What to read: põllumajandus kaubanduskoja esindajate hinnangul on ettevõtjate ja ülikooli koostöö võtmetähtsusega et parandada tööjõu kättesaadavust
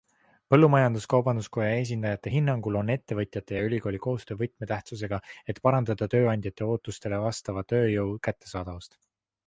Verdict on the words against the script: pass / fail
fail